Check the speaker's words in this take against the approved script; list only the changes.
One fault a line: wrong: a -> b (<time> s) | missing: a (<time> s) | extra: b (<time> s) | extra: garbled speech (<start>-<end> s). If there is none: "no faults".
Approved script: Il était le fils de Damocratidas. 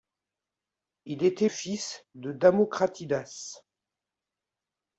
missing: le (1.5 s)